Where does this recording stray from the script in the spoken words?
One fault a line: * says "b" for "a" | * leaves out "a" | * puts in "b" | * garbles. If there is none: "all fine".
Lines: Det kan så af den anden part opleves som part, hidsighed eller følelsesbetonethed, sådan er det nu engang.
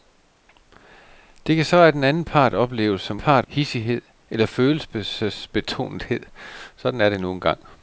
all fine